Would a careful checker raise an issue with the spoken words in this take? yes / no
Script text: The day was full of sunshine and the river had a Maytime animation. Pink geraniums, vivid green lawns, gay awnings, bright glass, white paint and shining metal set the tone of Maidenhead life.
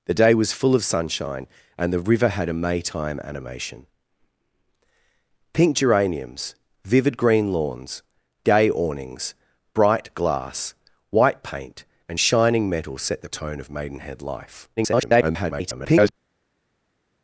yes